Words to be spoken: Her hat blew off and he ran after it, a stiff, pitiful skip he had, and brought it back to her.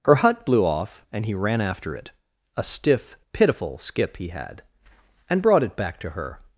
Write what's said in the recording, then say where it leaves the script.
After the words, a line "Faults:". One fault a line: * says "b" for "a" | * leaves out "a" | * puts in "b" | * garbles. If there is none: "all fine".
Her hut blew off and he ran after it, a stiff, pitiful skip he had, and brought it back to her.
Faults:
* says "hut" for "hat"